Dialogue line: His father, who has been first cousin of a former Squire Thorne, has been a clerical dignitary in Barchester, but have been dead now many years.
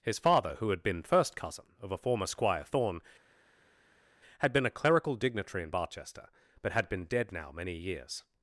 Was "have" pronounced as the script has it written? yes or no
no